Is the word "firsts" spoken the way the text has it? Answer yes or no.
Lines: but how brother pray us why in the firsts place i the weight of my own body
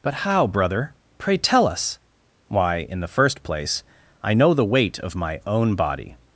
no